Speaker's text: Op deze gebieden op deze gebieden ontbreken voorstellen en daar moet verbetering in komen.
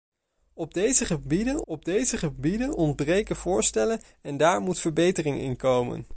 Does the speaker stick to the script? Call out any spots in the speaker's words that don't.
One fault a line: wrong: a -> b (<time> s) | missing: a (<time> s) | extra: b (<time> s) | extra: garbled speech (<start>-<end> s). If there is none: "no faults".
no faults